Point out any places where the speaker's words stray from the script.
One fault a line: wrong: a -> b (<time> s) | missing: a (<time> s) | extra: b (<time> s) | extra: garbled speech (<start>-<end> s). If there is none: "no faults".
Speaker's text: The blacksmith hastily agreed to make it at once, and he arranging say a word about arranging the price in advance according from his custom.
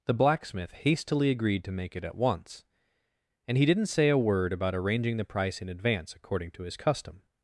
wrong: arranging -> didn't (3.7 s)
wrong: from -> to (6.5 s)